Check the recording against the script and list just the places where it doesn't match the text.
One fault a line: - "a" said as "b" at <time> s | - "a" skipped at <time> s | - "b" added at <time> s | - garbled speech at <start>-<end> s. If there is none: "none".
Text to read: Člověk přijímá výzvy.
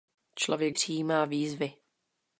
none